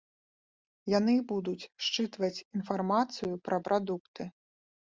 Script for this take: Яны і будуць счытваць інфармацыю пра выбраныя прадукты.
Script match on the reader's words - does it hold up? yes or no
no